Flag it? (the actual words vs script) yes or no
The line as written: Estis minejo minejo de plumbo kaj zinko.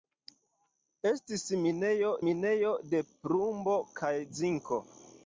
no